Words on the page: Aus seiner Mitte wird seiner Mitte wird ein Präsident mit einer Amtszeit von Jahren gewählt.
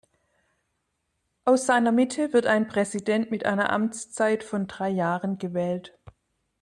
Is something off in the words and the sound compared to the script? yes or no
yes